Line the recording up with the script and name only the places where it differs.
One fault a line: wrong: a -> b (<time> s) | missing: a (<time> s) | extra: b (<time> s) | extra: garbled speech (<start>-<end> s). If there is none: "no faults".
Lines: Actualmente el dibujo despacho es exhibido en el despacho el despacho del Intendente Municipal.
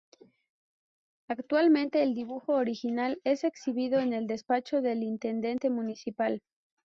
wrong: despacho -> original (2.5 s)
missing: el despacho (4.8 s)